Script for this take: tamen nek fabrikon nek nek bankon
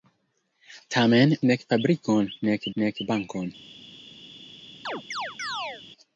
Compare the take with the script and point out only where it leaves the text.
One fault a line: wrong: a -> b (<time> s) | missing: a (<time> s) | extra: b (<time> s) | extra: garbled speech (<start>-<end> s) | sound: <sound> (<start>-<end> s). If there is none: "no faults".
sound: chirp (4.9-5.8 s)